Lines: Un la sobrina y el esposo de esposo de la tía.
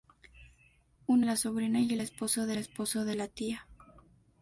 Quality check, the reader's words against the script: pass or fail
pass